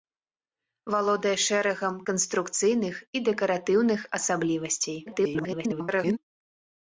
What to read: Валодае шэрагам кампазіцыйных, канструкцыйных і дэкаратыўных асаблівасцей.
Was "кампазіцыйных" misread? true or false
true